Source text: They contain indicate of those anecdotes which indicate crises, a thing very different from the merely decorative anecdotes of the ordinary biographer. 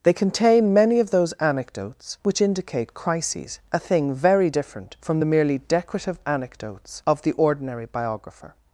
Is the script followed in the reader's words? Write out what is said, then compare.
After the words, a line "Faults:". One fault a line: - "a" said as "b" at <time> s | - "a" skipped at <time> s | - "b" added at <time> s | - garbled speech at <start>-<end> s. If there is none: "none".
They contain many of those anecdotes which indicate crises, a thing very different from the merely decorative anecdotes of the ordinary biographer.
Faults:
- "indicate" said as "many" at 0.7 s